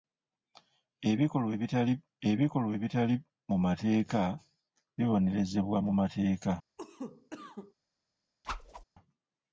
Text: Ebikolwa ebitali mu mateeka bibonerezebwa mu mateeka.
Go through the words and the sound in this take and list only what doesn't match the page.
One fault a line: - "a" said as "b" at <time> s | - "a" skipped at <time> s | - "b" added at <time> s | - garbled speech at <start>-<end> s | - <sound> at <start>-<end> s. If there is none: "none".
- "ebikolwa ebitali" added at 2.3 s
- cough at 6.8-7.7 s
- whoosh at 8.4-8.8 s